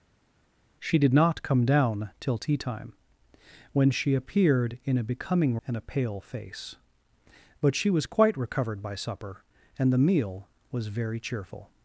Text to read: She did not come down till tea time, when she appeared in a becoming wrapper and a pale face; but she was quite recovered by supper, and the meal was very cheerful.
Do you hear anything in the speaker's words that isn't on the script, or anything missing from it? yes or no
yes